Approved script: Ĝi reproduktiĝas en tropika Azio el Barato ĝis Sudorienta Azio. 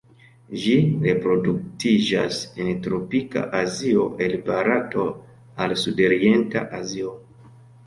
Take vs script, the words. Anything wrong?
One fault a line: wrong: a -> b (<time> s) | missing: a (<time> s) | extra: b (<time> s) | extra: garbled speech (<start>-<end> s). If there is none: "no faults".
wrong: ĝis -> al (5.7 s)